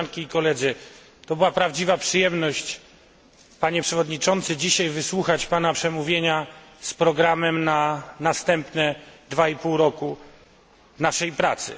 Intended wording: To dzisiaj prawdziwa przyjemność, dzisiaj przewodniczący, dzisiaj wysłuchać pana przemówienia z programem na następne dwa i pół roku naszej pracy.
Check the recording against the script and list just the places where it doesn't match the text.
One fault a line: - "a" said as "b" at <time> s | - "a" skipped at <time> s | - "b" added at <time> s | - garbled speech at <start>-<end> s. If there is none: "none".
- "dzisiaj" said as "była" at 1.4 s
- "dzisiaj" said as "panie" at 3.6 s